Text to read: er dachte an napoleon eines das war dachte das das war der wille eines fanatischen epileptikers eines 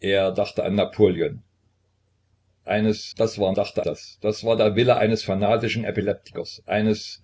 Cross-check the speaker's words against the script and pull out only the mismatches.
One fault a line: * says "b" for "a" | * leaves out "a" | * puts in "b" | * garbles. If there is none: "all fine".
all fine